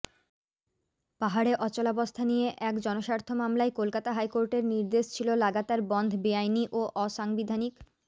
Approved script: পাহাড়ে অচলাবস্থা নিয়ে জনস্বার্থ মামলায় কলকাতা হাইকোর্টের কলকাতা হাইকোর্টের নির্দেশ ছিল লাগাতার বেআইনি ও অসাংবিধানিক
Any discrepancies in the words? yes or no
yes